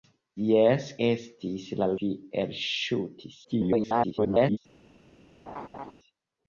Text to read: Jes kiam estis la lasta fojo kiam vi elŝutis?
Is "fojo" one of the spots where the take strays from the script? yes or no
yes